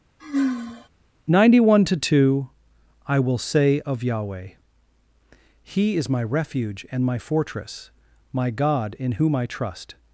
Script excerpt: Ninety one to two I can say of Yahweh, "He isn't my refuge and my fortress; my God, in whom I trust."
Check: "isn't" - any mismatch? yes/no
yes